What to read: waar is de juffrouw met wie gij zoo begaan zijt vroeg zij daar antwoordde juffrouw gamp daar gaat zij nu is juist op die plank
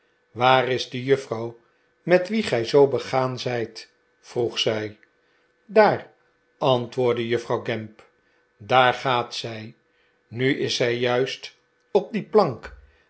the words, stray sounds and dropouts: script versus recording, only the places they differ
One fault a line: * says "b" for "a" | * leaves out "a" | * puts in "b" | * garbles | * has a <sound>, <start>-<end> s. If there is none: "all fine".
* puts in "zij"